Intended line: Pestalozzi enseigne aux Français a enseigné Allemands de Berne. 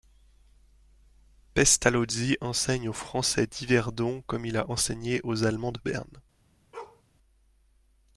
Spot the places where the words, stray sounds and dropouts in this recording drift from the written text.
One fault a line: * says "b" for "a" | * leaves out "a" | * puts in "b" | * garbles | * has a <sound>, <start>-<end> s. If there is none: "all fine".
* puts in "d'Yverdon comme il"
* puts in "aux"
* has a bark, 6.7-7.0 s